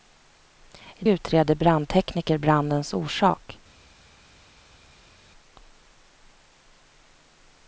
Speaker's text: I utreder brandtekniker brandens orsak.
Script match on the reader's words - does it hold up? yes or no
yes